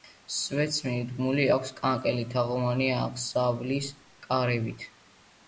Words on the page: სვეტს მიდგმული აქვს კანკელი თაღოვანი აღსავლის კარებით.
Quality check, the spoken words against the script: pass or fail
pass